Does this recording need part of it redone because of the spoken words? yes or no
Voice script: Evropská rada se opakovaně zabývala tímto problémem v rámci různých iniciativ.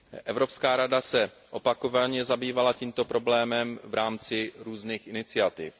no